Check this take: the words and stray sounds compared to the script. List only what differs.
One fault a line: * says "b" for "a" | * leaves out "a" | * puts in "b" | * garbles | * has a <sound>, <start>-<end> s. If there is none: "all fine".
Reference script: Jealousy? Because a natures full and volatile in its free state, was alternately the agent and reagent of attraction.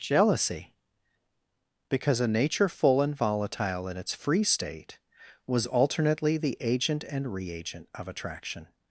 * says "nature" for "natures"